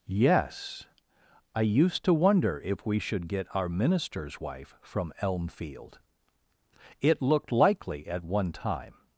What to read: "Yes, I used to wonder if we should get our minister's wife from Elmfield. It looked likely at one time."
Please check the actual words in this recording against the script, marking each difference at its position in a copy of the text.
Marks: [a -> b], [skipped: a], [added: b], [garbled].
"Yes, I used to wonder if we should get our minister's wife from Elmfield. It looked likely at one time."